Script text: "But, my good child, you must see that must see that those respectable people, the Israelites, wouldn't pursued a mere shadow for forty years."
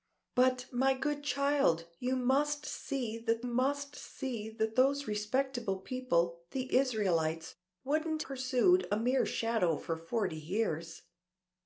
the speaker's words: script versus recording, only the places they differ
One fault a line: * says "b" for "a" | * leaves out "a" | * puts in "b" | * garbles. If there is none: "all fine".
all fine